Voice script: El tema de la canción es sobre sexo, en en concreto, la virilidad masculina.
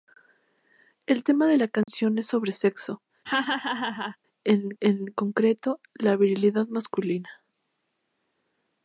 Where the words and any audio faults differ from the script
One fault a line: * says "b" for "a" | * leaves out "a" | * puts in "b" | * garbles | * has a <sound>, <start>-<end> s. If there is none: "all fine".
* has a dropout, 1.8-1.9 s
* has a laugh, 3.2-4.2 s